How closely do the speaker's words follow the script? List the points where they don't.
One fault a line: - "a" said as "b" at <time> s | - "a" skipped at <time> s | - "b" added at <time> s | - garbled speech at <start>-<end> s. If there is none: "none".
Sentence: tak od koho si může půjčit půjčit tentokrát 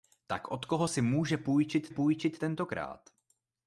none